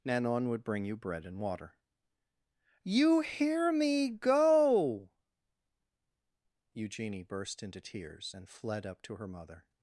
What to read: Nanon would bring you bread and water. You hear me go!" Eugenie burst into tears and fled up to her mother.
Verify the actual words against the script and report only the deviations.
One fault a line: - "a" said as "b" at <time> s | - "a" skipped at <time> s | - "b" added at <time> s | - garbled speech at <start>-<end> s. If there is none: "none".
none